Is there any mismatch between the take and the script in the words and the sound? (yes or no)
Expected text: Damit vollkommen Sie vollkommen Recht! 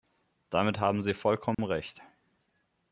yes